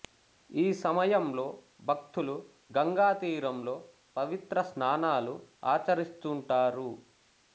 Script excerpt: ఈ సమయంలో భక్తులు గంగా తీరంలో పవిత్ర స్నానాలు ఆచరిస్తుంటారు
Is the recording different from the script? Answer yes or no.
no